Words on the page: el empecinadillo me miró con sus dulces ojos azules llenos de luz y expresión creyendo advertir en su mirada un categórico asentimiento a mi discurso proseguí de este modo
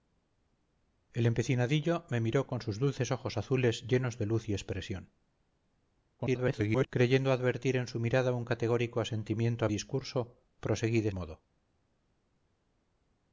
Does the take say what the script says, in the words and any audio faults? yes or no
no